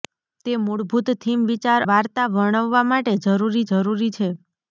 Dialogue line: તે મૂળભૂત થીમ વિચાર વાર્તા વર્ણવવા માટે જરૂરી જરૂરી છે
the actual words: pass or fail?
pass